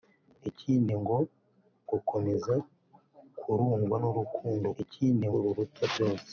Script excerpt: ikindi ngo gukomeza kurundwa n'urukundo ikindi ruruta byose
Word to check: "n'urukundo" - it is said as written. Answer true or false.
true